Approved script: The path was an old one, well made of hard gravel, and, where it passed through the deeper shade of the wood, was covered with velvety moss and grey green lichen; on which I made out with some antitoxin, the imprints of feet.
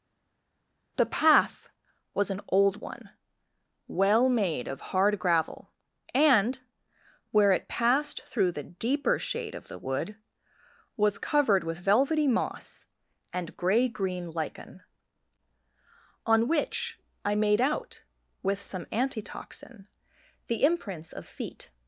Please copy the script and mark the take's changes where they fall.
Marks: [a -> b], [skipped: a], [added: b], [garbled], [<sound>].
The path was an old one, well made of hard gravel, and, where it passed through the deeper shade of the wood, was covered with velvety moss and grey green lichen; on which I made out with some antitoxin, the imprints of feet.